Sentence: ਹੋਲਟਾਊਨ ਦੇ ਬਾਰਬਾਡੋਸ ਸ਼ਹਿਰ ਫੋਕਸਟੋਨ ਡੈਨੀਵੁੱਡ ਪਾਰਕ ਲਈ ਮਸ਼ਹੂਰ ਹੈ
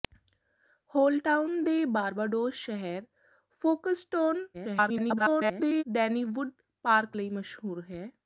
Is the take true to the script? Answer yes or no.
no